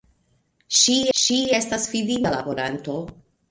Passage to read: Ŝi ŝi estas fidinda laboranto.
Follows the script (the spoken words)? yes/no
yes